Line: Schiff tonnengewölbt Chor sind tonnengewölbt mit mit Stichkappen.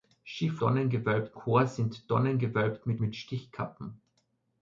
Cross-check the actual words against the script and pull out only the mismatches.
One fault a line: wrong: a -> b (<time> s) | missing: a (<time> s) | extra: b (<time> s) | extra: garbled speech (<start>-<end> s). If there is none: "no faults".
no faults